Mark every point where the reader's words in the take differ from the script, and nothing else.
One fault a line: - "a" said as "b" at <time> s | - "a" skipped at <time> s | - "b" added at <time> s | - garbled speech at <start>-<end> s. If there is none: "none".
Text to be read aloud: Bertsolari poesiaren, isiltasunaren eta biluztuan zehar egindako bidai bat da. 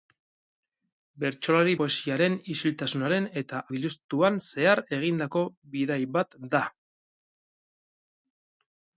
none